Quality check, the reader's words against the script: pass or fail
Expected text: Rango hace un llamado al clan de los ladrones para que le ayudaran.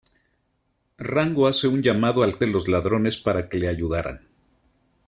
fail